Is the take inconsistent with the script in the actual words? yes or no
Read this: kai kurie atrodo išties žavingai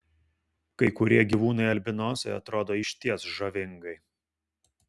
yes